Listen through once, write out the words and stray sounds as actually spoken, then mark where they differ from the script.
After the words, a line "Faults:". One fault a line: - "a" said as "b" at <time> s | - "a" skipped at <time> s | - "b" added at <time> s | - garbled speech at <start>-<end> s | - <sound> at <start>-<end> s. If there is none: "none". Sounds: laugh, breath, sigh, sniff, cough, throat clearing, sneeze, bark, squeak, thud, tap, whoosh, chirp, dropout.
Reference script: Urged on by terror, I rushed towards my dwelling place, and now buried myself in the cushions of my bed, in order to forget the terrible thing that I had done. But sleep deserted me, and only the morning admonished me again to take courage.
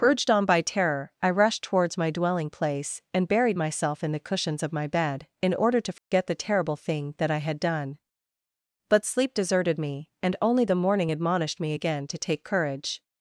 Urged on by terror, I rushed towards my dwelling place, and buried myself in the cushions of my bed, in order to forget the terrible thing that I had done. But sleep deserted me, and only the morning admonished me again to take courage.
Faults:
- "now" skipped at 3.3 s
- dropout at 6.0-6.1 s